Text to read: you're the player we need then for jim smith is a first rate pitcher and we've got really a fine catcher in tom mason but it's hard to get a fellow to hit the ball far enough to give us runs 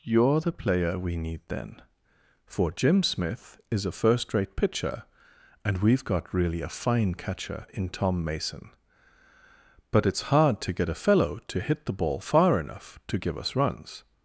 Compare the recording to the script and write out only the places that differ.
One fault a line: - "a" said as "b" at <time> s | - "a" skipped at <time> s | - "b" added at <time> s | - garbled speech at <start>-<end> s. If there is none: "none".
none